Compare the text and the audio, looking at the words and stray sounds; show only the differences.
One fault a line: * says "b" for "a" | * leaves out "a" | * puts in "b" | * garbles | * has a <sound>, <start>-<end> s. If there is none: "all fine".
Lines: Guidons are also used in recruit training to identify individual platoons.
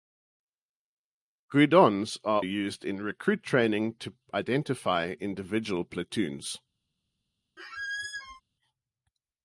* leaves out "also"
* has a squeak, 7.6-8.4 s